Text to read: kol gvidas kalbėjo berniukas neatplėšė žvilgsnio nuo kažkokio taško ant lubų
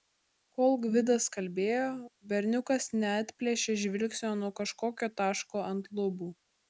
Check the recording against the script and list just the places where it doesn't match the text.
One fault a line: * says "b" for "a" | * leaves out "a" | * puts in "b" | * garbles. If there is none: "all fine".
all fine